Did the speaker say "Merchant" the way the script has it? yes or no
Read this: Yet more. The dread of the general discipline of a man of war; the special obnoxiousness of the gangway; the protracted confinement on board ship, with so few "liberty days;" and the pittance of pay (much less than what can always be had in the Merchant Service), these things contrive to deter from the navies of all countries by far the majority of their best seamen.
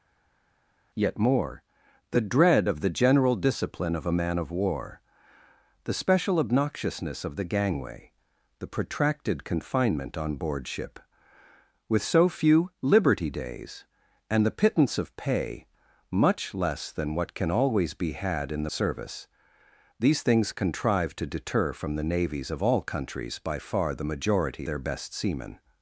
no